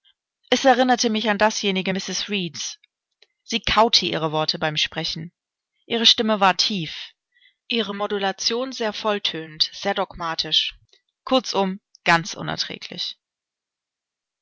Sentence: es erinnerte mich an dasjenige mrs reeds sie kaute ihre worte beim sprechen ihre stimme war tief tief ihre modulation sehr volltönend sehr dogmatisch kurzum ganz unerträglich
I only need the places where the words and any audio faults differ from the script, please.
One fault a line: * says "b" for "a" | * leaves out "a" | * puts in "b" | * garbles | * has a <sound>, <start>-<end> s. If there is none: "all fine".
* leaves out "tief"